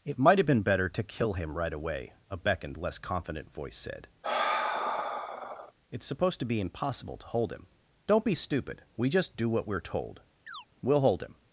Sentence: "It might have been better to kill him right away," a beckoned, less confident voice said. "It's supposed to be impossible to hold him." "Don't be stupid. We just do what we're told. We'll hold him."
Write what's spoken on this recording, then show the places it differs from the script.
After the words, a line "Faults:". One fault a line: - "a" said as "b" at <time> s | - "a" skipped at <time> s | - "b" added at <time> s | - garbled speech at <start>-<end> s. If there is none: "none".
"It might have been better to kill him right away," a beckoned, less confident voice said. "It's supposed to be impossible to hold him." "Don't be stupid. We just do what we're told. We'll hold him."
Faults:
none